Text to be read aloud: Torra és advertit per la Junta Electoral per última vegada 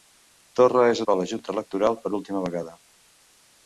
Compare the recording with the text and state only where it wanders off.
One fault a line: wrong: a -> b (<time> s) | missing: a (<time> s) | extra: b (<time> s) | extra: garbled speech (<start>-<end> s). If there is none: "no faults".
missing: advertit (1.0 s)